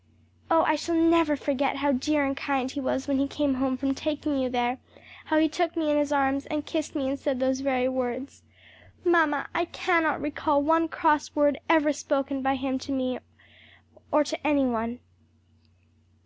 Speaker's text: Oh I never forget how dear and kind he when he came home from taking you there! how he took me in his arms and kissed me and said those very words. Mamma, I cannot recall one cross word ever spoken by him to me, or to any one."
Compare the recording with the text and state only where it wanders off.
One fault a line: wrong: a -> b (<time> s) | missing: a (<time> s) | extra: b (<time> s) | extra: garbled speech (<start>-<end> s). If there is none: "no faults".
extra: shall (0.8 s)
extra: was (2.8 s)